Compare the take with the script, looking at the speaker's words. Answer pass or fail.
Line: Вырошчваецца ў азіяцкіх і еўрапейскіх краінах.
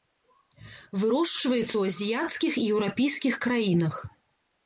pass